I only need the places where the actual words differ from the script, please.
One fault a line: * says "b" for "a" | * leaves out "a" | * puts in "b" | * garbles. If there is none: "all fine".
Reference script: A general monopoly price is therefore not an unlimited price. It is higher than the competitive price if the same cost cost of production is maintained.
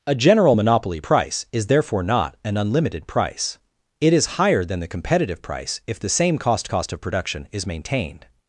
all fine